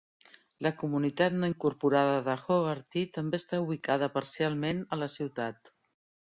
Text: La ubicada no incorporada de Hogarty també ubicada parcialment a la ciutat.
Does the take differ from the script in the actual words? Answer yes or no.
yes